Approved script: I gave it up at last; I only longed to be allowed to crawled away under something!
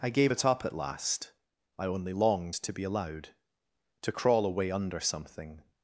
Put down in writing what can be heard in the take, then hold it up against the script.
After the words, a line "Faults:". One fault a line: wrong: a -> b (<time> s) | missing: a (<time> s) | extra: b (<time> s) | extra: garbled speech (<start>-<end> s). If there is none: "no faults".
I gave it up at last; I only longed to be allowed to crawl away under something!
Faults:
wrong: crawled -> crawl (4.1 s)